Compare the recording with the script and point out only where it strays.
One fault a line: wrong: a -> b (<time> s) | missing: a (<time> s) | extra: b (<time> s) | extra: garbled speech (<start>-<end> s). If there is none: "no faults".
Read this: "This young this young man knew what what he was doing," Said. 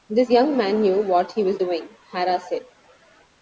missing: this young (0.6 s)
missing: what (1.3 s)
extra: Hara (2.1 s)